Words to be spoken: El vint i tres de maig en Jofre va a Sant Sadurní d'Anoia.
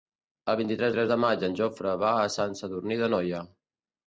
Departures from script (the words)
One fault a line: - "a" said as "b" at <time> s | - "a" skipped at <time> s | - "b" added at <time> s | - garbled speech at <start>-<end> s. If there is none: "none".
- "tres" added at 1.0 s